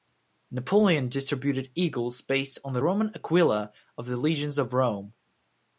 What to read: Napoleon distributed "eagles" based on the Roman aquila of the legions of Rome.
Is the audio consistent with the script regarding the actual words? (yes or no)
yes